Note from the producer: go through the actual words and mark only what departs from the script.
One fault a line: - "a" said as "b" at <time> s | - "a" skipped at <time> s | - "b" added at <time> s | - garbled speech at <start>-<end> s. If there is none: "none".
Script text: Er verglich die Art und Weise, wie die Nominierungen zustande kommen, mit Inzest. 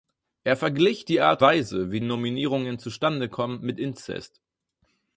- "und" skipped at 1.4 s
- "die" skipped at 2.0 s